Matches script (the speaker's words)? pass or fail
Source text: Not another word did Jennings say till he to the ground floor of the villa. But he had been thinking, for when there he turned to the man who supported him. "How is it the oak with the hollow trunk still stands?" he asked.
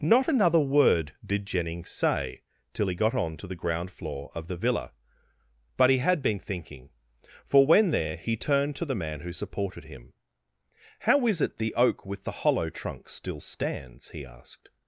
fail